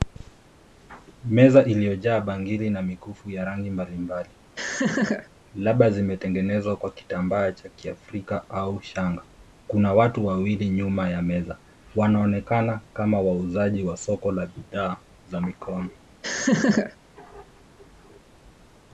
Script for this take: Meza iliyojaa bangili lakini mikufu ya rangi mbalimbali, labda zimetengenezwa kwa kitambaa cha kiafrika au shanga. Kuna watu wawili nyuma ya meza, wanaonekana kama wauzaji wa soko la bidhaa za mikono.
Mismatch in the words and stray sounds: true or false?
true